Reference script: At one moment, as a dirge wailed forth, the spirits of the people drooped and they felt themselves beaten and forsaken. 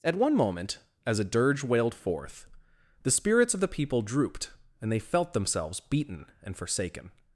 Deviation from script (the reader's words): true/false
false